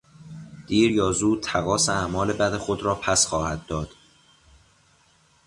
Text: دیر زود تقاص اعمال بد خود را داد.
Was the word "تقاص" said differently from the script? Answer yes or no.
no